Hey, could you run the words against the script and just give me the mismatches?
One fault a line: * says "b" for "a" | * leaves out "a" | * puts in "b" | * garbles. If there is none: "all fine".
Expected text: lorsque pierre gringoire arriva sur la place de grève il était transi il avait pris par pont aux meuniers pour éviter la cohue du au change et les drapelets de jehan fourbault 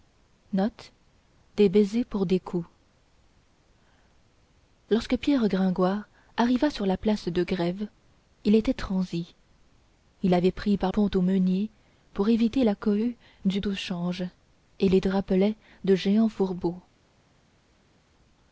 all fine